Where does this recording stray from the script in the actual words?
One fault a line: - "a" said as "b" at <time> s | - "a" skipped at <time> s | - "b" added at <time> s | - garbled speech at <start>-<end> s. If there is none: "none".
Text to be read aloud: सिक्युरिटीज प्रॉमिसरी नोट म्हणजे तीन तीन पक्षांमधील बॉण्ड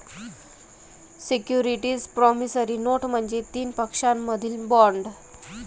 - "तीन" skipped at 3.7 s